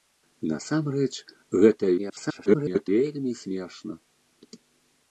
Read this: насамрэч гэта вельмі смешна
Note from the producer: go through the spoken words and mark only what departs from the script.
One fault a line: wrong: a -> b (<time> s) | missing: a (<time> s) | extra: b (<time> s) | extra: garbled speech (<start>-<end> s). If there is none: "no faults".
extra: garbled speech (2.0-2.9 s)